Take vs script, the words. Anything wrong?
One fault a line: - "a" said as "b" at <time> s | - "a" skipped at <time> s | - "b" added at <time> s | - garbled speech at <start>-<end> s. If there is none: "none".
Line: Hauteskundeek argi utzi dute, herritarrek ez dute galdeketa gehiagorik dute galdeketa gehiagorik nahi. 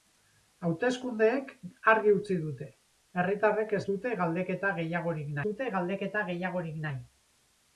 none